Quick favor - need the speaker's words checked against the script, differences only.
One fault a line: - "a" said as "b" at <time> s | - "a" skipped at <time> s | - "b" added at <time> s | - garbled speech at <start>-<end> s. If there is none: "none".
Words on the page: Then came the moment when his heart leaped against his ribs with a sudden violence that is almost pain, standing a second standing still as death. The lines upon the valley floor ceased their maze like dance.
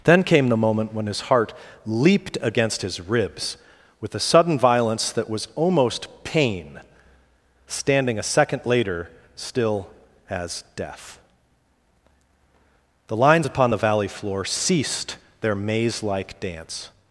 - "is" said as "was" at 5.3 s
- "standing" said as "later" at 8.7 s